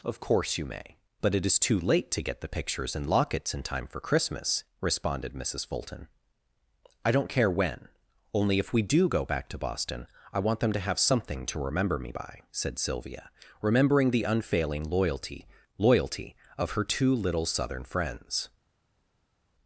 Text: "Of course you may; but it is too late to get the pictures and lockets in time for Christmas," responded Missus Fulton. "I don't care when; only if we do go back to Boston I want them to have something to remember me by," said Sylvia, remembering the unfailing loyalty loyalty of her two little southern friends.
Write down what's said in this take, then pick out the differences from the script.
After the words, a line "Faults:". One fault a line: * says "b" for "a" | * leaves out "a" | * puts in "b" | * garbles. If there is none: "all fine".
"Of course you may; but it is too late to get the pictures and lockets in time for Christmas," responded Missus Fulton. "I don't care when; only if we do go back to Boston I want them to have something to remember me by," said Sylvia, remembering the unfailing loyalty loyalty of her two little southern friends.
Faults:
all fine